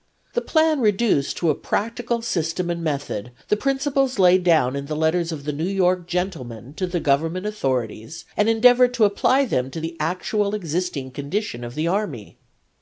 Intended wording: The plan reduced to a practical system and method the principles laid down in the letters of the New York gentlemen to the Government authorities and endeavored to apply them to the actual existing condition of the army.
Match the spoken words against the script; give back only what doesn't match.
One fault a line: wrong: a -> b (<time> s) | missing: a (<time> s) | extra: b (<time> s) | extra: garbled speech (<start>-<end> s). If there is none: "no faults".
no faults